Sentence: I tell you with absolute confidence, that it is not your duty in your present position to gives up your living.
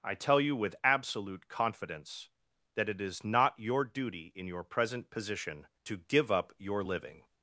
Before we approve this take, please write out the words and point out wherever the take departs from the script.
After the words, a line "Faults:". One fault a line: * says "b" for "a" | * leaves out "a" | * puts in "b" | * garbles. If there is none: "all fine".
I tell you with absolute confidence, that it is not your duty in your present position to give up your living.
Faults:
* says "give" for "gives"